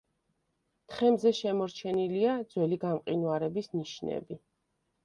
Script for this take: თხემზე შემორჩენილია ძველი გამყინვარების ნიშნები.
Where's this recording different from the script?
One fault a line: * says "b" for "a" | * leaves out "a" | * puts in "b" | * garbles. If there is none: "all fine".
all fine